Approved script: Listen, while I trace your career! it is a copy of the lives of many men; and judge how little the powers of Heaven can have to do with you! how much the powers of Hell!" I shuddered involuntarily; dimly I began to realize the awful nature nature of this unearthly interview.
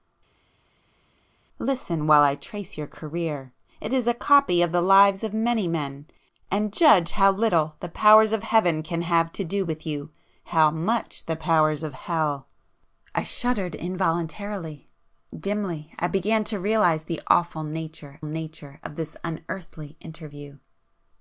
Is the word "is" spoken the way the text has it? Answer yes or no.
yes